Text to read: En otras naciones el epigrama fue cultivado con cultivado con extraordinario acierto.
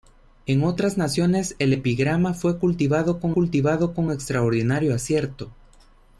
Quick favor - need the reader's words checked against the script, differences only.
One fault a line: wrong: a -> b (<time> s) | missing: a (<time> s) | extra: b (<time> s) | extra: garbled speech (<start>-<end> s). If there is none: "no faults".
no faults